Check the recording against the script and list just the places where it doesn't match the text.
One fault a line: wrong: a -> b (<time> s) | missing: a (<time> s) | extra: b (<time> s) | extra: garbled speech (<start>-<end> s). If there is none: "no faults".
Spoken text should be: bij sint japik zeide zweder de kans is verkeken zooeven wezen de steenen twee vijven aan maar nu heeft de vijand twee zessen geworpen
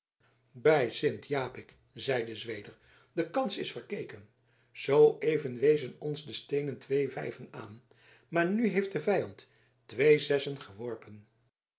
extra: ons (6.0 s)